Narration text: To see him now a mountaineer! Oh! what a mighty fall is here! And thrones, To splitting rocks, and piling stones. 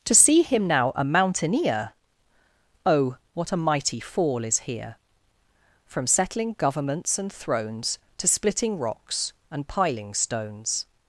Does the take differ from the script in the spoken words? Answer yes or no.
yes